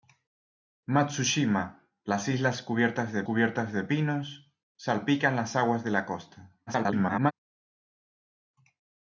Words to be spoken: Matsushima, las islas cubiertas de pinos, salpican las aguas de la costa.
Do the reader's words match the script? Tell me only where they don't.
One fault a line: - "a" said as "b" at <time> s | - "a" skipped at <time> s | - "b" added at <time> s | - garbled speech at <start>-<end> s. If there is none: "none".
- "cubiertas de" added at 3.2 s
- garbled speech at 6.7-7.3 s